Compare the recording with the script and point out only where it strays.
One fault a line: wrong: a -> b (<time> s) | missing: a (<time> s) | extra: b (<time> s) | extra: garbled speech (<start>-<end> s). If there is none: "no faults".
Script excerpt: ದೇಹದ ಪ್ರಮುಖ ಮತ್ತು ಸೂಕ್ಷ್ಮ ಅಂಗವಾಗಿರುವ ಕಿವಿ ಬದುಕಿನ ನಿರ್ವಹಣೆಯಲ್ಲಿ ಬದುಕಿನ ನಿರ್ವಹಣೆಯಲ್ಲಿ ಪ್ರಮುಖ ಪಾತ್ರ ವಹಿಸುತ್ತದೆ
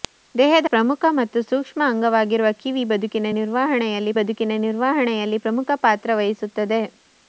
no faults